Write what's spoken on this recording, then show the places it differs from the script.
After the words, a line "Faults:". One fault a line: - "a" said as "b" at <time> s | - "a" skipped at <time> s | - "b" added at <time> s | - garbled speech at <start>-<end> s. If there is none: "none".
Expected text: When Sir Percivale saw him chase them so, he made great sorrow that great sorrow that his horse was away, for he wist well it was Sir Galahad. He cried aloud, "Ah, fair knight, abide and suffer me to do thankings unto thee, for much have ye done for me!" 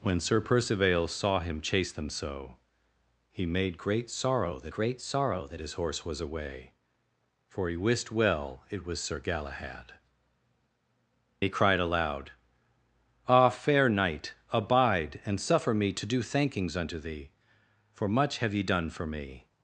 When Sir Percivale saw him chase them so, he made great sorrow that great sorrow that his horse was away, for he wist well it was Sir Galahad. He cried aloud, "Ah, fair knight, abide and suffer me to do thankings unto thee, for much have ye done for me!"
Faults:
none